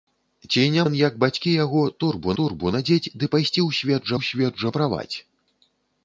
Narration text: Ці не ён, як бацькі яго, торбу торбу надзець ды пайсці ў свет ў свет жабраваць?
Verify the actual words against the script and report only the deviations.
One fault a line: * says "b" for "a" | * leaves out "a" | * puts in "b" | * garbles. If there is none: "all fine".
all fine